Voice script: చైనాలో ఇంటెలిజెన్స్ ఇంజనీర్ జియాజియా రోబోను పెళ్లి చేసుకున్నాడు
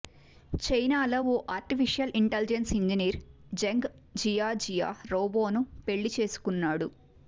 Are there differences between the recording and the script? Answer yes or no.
yes